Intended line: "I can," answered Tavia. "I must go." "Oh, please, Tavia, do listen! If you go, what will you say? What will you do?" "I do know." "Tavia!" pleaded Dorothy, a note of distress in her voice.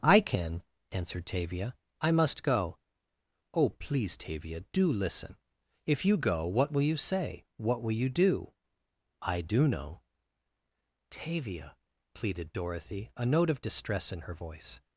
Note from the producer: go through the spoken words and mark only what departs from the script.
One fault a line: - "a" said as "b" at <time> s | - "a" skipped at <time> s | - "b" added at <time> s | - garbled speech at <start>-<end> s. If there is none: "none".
none